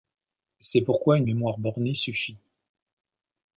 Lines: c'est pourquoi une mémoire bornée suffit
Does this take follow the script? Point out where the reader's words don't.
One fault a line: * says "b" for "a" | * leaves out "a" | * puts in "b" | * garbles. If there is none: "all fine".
all fine